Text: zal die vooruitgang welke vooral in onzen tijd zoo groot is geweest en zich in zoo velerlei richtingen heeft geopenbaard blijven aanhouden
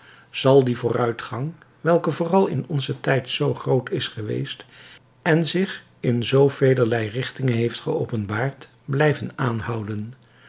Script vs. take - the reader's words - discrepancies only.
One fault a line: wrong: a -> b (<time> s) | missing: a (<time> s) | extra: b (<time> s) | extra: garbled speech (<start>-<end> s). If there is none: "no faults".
no faults